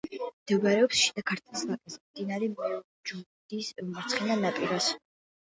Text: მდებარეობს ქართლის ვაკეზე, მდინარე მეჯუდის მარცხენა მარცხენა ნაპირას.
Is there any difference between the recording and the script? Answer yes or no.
yes